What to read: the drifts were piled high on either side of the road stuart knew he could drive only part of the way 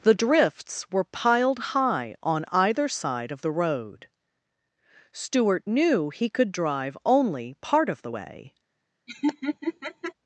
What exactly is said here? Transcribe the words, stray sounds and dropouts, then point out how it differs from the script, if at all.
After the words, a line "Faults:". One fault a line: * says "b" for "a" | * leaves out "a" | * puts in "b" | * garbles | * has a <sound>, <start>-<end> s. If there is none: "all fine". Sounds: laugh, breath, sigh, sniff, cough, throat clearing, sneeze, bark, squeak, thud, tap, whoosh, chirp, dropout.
the drifts were piled high on either side of the road stuart knew he could drive only part of the way
Faults:
* has a laugh, 9.1-10.1 s